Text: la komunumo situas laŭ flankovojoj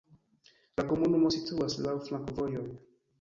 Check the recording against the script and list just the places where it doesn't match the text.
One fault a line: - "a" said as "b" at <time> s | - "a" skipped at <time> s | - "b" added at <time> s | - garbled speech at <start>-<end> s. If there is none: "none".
none